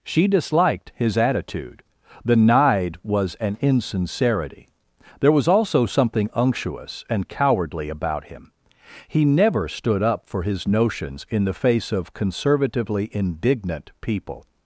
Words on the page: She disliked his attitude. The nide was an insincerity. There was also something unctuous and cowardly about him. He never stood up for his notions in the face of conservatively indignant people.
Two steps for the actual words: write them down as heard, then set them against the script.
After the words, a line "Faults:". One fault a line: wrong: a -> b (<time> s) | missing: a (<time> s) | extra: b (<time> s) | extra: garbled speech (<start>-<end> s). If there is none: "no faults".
She disliked his attitude. The nide was an insincerity. There was also something unctuous and cowardly about him. He never stood up for his notions in the face of conservatively indignant people.
Faults:
no faults